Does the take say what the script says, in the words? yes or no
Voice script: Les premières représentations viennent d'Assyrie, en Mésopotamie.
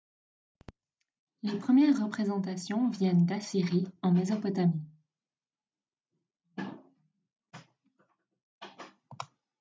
yes